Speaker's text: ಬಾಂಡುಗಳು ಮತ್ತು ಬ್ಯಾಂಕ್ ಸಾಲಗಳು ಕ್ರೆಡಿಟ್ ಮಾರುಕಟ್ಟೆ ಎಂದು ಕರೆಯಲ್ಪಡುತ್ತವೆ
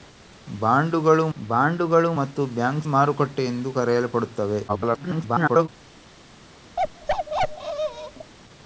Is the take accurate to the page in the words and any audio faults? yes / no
no